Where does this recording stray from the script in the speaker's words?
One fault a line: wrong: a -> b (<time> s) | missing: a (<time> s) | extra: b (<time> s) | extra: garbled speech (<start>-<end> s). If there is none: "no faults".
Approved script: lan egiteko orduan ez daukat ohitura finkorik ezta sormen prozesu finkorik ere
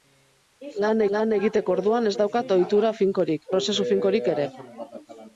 extra: lan (1.2 s)
missing: ezta sormen (3.5 s)